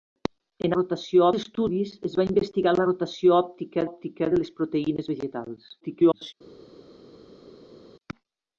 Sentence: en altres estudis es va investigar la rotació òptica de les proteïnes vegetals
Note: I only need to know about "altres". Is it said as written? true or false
false